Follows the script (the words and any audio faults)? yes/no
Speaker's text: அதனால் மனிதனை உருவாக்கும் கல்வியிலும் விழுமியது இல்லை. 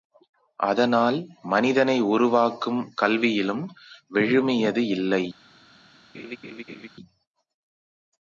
no